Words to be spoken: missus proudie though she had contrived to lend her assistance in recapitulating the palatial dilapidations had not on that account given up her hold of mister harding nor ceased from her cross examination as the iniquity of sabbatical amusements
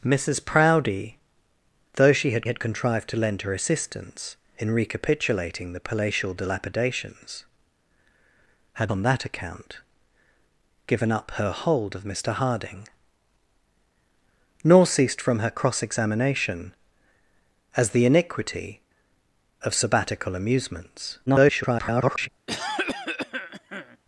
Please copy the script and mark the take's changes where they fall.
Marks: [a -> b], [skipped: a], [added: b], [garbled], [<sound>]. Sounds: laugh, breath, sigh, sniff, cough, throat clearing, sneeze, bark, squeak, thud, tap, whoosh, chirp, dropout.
missus proudie though she had [added: had] contrived to lend her assistance in recapitulating the palatial dilapidations had [skipped: not] on that account given up her hold of mister harding nor ceased from her cross examination as the iniquity of sabbatical amusements [garbled] [cough]